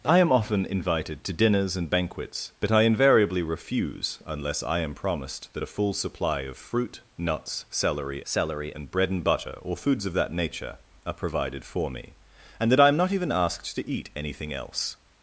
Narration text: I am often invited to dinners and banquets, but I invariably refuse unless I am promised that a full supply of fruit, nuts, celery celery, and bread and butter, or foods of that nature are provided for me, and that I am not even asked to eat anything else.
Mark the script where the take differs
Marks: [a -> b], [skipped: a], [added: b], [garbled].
I am often invited to dinners and banquets, but I invariably refuse unless I am promised that a full supply of fruit, nuts, celery celery, and bread and butter, or foods of that nature are provided for me, and that I am not even asked to eat anything else.